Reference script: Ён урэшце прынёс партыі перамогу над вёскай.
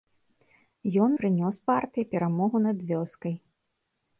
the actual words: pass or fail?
fail